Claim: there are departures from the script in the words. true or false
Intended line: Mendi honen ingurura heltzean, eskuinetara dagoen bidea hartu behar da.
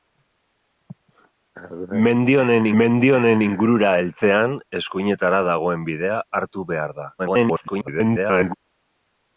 true